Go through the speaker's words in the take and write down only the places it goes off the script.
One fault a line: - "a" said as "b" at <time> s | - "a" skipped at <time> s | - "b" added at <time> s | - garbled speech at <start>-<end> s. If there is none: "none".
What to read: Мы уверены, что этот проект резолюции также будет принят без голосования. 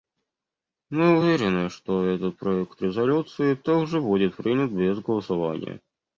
none